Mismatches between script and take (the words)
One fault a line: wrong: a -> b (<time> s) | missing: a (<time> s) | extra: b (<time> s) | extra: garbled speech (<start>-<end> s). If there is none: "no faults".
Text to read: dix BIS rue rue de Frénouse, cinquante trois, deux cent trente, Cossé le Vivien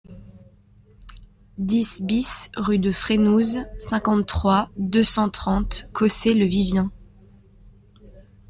missing: rue (2.8 s)